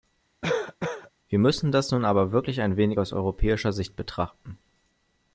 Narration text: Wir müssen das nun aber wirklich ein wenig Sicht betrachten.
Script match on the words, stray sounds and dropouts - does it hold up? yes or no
no